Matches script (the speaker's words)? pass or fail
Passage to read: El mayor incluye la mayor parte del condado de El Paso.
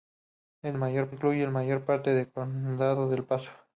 pass